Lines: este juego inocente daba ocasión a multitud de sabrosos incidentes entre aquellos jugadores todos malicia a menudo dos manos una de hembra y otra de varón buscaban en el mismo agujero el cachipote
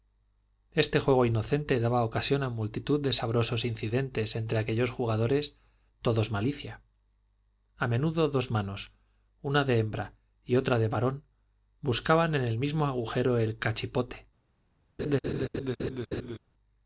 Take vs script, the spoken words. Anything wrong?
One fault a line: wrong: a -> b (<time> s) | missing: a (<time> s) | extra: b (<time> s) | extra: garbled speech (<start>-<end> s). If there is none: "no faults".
no faults